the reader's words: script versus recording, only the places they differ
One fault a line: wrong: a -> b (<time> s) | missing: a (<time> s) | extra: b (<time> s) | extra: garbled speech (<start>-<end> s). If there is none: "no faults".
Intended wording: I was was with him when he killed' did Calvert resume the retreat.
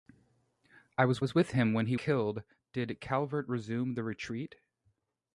no faults